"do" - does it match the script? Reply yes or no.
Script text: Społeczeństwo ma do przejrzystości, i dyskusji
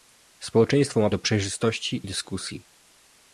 yes